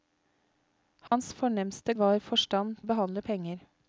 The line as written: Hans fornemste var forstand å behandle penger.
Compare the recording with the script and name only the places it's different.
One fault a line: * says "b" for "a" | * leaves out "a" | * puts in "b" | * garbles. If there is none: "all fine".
all fine